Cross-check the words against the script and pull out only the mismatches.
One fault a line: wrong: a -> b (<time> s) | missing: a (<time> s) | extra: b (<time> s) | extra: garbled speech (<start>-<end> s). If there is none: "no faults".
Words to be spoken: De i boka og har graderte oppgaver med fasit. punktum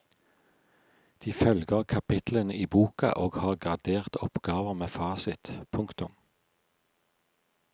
extra: følger kapitlene (1.3 s)